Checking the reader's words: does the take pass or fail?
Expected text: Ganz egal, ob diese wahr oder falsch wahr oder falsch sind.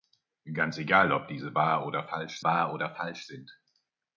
pass